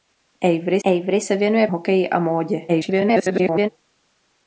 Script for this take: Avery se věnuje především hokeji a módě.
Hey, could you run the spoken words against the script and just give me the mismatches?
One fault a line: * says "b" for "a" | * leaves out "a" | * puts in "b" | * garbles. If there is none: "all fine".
* puts in "avery"
* leaves out "především"
* garbles